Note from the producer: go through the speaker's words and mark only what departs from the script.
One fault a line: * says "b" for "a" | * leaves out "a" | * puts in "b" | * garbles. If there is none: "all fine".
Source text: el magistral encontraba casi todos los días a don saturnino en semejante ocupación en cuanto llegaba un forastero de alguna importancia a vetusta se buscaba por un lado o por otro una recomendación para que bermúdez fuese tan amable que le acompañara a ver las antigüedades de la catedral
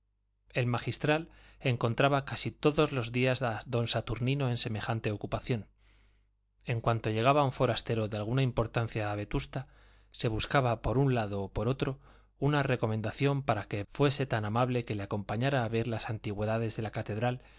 * leaves out "bermúdez"